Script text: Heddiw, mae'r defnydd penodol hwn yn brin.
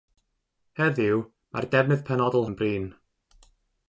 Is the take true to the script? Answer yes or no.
no